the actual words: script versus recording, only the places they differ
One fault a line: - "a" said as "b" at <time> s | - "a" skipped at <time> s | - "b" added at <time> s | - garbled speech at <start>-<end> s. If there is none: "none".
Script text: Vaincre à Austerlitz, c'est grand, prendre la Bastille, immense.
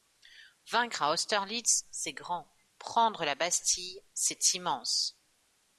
- "c'est" added at 4.1 s